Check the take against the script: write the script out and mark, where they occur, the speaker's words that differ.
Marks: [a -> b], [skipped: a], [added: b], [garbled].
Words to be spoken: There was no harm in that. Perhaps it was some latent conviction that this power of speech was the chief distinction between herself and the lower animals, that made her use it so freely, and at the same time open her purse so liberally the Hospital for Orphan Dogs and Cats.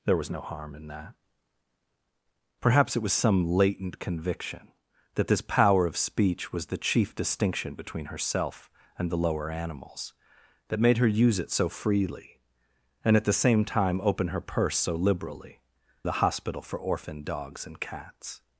There was no harm in that. Perhaps it was some latent conviction that this power of speech was the chief distinction between herself and the lower animals, that made her use it so freely, and at the same time open her purse so liberally the Hospital for Orphan Dogs and Cats.